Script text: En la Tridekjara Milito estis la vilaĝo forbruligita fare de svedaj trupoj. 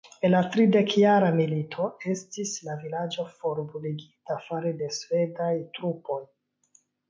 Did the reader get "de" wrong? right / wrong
right